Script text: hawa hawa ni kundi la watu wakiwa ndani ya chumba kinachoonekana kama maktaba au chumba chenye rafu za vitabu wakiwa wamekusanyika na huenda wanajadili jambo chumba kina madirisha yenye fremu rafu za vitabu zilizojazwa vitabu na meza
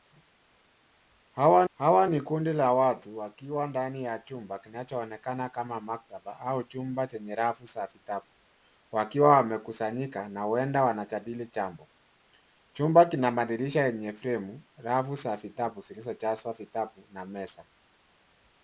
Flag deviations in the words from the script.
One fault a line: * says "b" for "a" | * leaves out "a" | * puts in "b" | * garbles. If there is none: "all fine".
all fine